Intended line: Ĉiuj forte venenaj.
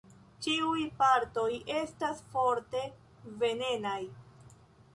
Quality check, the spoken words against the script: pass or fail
fail